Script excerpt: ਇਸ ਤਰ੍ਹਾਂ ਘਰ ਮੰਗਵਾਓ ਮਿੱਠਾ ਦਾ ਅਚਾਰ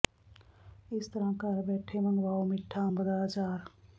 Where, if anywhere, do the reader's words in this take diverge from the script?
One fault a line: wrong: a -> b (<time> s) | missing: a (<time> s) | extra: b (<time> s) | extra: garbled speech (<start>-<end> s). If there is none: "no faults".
extra: ਬੈਠੇ (1.6 s)
extra: ਅੰਬ (2.9 s)